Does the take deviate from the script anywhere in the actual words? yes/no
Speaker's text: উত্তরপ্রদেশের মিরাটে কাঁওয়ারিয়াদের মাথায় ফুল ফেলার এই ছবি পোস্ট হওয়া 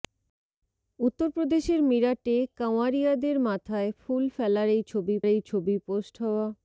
yes